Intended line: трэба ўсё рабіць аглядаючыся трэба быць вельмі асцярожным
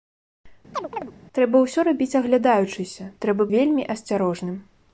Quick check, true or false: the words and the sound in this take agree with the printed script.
false